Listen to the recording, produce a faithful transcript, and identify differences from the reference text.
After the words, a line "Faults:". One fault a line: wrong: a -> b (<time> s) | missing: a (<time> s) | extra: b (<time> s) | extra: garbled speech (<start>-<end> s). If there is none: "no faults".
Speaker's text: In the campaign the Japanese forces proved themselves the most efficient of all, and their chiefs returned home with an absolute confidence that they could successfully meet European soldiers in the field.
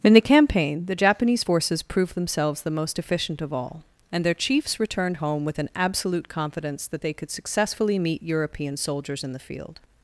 In the campaign the Japanese forces proved themselves the most efficient of all, and their chiefs returned home with an absolute confidence that they could successfully meet European soldiers in the field.
Faults:
no faults